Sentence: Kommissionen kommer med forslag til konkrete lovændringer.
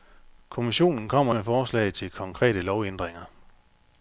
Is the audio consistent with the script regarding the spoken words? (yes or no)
yes